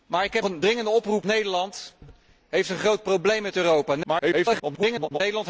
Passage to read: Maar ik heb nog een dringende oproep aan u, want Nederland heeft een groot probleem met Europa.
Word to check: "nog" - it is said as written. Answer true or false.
false